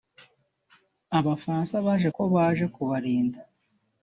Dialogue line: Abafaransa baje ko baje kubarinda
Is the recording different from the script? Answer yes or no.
no